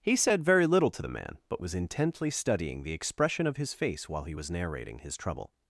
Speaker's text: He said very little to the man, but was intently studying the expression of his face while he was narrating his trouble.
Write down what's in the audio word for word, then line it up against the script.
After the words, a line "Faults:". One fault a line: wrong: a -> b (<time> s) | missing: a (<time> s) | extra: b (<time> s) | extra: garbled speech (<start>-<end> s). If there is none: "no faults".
He said very little to the man, but was intently studying the expression of his face while he was narrating his trouble.
Faults:
no faults